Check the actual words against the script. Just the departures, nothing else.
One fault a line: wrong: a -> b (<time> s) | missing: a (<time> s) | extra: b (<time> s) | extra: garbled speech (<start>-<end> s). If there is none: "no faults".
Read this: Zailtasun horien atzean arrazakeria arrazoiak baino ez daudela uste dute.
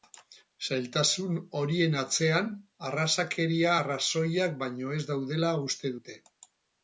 no faults